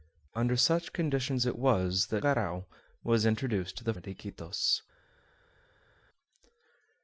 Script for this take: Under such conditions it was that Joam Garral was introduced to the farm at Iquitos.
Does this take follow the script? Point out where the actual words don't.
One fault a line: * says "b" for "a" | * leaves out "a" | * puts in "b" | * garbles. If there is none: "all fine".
* leaves out "Joam"
* leaves out "farm"